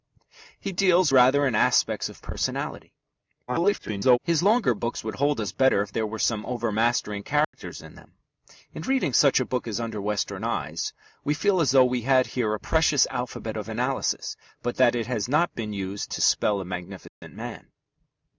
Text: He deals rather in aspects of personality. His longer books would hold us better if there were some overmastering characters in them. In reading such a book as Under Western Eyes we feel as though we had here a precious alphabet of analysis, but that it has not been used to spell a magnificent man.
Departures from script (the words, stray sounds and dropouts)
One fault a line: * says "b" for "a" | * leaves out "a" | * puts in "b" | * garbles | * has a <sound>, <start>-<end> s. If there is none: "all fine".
* garbles
* has a dropout, 7.4-7.5 s
* has a dropout, 17.1-17.2 s